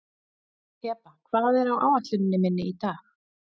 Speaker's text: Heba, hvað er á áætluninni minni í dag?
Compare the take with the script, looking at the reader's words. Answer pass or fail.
pass